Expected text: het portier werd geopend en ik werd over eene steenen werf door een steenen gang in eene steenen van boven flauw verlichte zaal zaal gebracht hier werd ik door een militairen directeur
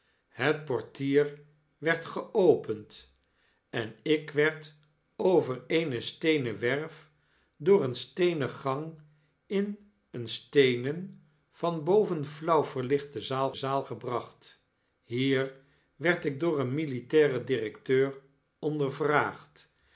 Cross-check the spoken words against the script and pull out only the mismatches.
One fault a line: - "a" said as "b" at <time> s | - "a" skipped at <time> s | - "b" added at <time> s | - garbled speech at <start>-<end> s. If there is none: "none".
none